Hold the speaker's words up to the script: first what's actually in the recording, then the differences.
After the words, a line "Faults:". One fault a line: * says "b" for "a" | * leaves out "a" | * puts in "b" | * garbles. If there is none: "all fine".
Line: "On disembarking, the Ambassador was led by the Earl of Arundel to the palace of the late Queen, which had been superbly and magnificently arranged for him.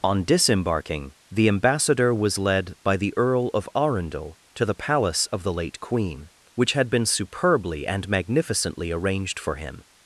"On disembarking, the Ambassador was led by the Earl of Arundel to the palace of the late Queen, which had been superbly and magnificently arranged for him.
Faults:
all fine